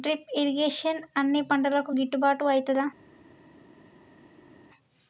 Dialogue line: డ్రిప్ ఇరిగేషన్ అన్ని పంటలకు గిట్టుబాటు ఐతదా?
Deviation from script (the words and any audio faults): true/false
false